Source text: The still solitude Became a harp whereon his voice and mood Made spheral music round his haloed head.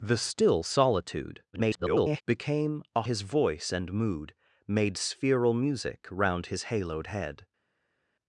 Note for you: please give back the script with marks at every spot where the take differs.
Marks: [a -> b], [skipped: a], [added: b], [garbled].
The still solitude [garbled] Became a [skipped: harp whereon] his voice and mood Made spheral music round his haloed head.